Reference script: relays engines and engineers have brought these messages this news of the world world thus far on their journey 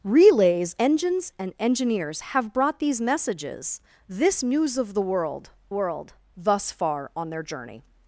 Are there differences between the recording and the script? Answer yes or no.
no